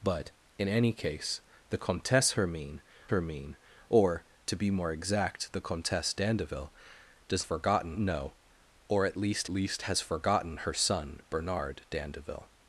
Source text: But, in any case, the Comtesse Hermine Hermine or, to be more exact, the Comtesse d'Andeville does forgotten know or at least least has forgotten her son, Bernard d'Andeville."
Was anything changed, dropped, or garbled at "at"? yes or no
no